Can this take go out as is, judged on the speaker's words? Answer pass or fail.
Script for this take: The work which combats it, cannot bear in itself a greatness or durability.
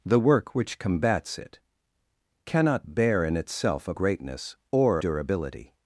pass